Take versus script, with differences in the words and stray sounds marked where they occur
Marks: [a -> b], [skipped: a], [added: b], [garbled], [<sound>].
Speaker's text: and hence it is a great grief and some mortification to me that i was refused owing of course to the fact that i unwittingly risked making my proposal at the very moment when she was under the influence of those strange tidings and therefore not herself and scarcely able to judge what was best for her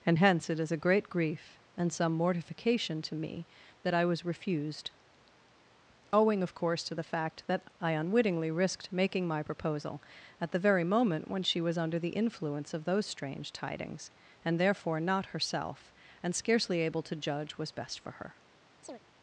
and hence it is a great grief and some mortification to me that i was refused owing of course to the fact that i unwittingly risked making my proposal at the very moment when she was under the influence of those strange tidings and therefore not herself and scarcely able to judge [skipped: what] was best for her [chirp]